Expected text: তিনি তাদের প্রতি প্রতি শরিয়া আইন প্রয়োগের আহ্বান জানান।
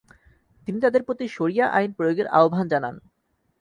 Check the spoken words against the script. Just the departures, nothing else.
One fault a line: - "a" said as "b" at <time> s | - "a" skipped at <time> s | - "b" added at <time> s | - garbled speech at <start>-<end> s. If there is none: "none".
- "প্রতি" skipped at 1.2 s